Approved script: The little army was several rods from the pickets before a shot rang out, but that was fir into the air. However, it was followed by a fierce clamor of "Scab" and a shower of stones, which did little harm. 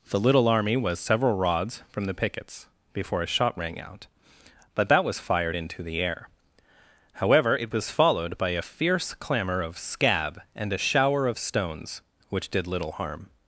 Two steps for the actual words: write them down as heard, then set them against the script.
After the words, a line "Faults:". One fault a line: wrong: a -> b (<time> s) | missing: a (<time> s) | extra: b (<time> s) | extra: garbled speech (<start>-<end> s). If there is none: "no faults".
The little army was several rods from the pickets before a shot rang out, but that was fired into the air. However, it was followed by a fierce clamor of "Scab" and a shower of stones, which did little harm.
Faults:
wrong: fir -> fired (5.2 s)